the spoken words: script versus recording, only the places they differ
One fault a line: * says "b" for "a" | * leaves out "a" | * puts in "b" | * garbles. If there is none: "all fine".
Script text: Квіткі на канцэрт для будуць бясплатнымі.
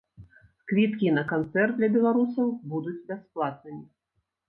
* puts in "беларусаў"